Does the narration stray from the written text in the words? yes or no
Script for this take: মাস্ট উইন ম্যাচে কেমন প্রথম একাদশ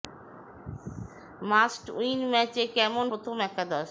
no